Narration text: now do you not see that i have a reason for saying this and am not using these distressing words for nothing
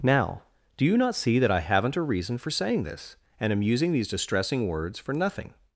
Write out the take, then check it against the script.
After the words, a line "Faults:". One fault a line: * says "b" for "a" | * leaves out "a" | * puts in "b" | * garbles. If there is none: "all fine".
now do you not see that i haven't a reason for saying this and am using these distressing words for nothing
Faults:
* says "haven't" for "have"
* leaves out "not"